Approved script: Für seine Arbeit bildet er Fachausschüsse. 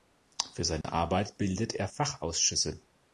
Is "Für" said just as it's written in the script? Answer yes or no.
yes